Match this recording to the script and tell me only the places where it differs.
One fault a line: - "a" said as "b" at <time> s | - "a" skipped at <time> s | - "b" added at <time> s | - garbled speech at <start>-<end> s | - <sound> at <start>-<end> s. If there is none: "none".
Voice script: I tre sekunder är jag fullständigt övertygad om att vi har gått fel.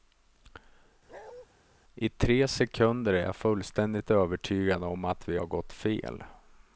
- bark at 1.1-1.5 s